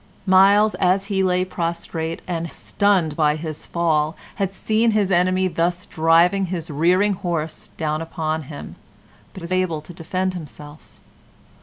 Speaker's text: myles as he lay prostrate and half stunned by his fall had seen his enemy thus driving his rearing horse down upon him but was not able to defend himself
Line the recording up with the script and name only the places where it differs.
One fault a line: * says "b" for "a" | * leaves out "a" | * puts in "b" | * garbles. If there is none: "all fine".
* leaves out "half"
* leaves out "not"